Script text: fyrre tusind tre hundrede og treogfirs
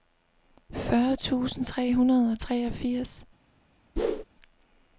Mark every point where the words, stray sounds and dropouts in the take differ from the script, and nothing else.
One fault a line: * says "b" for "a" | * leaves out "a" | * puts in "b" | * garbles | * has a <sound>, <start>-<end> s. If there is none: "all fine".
* has a whoosh, 4.0-4.2 s